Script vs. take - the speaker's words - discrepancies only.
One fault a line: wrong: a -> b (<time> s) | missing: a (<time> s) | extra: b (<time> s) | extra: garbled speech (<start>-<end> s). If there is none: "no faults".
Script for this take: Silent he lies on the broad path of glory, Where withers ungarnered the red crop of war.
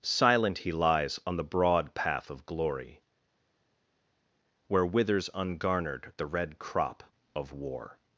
no faults